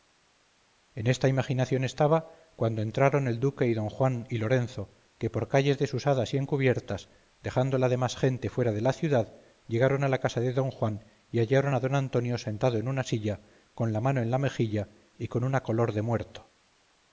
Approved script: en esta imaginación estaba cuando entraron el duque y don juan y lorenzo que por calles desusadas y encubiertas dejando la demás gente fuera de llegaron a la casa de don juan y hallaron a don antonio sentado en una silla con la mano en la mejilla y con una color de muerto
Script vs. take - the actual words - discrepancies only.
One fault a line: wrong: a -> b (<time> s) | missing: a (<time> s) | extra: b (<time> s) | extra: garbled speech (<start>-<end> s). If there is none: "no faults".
extra: la ciudad (8.8 s)